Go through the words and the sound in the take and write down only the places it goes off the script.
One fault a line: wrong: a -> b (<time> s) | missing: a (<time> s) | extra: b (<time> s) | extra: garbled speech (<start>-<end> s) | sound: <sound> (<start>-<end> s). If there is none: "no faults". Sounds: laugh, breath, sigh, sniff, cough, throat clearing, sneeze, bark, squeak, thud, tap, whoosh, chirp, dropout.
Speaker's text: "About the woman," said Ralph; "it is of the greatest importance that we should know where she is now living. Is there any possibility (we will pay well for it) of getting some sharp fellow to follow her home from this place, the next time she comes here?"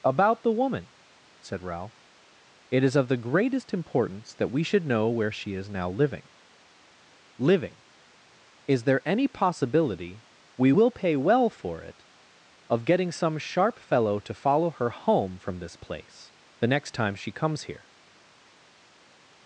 extra: living (7.4 s)